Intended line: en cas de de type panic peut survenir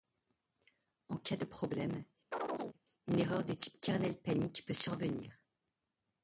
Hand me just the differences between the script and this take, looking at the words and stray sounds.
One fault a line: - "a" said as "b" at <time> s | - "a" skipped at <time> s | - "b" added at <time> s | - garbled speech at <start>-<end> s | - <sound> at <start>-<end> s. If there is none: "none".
- "problème une erreur" added at 1.4 s
- chirp at 2.3-2.8 s
- "kernel" added at 3.8 s